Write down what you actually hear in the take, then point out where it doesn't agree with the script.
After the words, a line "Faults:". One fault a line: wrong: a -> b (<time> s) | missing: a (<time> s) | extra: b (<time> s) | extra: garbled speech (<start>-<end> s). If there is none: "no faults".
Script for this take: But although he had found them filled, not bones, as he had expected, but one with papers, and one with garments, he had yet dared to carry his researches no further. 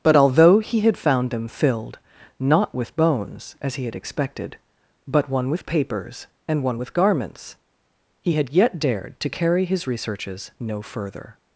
But although he had found them filled, not with bones, as he had expected, but one with papers, and one with garments, he had yet dared to carry his researches no further.
Faults:
extra: with (2.7 s)